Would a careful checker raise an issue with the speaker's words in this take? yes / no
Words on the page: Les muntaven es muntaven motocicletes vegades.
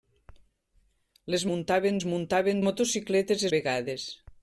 no